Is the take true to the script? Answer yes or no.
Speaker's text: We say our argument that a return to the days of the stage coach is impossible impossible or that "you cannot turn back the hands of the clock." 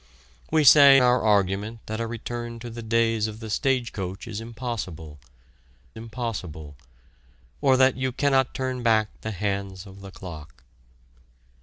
yes